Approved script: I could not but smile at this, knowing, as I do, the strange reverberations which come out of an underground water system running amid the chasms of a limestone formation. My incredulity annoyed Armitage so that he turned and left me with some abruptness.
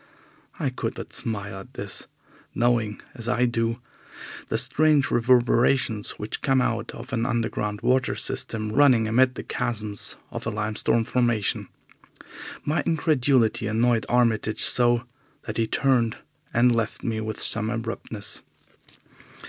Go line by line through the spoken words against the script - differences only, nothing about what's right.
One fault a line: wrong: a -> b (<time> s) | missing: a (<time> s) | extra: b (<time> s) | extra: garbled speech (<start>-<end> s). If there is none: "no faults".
missing: not (1.0 s)